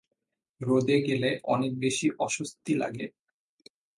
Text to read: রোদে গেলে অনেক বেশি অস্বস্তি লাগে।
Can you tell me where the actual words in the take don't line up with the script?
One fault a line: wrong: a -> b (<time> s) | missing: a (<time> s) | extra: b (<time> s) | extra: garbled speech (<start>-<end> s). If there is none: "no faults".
no faults